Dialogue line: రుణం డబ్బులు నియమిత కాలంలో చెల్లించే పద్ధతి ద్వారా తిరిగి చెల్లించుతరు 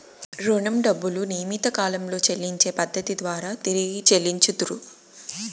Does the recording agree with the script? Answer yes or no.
yes